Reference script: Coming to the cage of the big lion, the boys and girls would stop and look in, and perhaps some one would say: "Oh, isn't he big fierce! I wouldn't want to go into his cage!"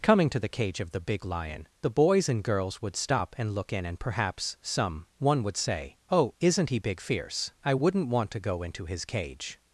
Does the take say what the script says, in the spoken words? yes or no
yes